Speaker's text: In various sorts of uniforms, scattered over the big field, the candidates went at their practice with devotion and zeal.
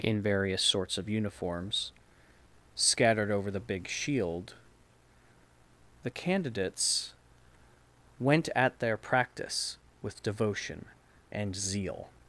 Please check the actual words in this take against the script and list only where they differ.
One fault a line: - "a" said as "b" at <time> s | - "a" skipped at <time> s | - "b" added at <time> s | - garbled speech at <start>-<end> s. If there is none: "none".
- "field" said as "shield" at 3.9 s